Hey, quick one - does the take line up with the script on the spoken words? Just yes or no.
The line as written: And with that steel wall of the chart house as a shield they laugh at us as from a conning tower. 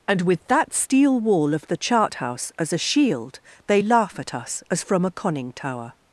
yes